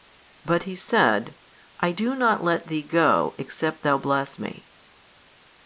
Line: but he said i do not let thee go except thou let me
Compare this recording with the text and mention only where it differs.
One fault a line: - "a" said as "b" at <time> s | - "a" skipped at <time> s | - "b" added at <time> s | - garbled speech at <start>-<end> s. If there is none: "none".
- "let" said as "bless" at 4.0 s